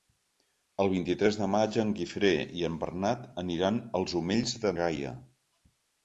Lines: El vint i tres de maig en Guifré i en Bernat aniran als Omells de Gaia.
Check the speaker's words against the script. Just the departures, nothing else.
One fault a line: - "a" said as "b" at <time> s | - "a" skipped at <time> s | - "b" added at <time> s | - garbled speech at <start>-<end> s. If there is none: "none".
none